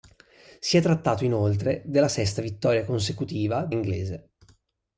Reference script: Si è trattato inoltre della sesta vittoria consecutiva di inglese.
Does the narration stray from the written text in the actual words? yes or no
no